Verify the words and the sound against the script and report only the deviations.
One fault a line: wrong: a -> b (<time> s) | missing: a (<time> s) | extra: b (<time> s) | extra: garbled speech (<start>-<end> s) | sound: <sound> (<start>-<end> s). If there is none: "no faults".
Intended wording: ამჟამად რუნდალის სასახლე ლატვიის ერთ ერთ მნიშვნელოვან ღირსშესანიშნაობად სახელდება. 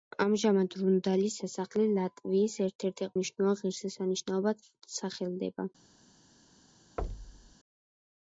sound: thud (7.0-7.5 s)